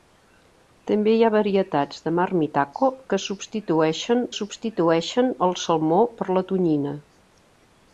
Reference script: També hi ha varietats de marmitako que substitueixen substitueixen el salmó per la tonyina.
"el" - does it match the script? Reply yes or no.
yes